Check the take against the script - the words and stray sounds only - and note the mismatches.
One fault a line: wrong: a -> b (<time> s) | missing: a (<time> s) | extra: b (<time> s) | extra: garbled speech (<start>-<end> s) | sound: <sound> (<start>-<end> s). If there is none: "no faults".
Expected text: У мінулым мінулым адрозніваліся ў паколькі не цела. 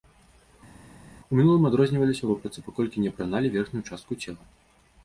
missing: мінулым (1.7 s)
extra: вопратцы (2.3 s)
extra: апраналі верхнюю частку (3.1 s)